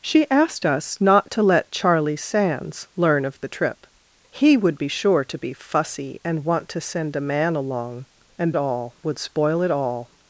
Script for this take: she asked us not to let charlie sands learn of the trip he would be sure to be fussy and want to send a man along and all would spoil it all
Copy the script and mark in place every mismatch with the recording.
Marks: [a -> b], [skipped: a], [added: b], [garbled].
she asked us not to let charlie sands learn of the trip he would be sure to be fussy and want to send a man along and all would spoil it all